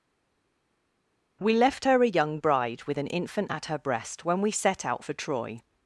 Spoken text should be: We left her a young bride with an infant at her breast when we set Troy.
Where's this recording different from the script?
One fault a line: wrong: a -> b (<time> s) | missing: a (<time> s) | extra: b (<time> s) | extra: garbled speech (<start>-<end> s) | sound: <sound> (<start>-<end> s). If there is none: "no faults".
extra: out for (4.8 s)